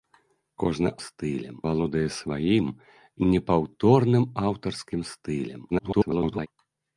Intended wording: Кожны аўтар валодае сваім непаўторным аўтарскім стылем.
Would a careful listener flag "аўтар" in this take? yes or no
yes